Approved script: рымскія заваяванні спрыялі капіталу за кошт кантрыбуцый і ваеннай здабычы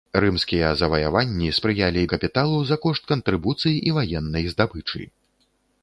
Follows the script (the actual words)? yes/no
yes